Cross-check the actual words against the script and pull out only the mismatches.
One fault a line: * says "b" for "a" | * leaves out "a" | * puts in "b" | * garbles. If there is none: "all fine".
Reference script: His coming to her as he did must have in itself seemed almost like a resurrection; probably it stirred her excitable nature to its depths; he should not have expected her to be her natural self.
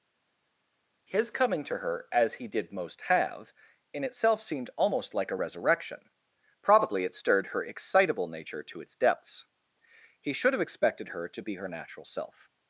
* says "most" for "must"
* leaves out "not"